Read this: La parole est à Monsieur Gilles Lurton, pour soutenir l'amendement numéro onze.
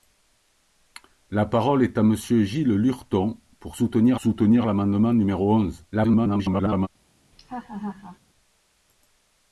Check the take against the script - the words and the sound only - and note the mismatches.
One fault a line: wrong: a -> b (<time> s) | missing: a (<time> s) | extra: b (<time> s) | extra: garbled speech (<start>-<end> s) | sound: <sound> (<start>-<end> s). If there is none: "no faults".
extra: soutenir (4.2 s)
extra: garbled speech (5.9-6.9 s)
sound: laugh (7.3-8.2 s)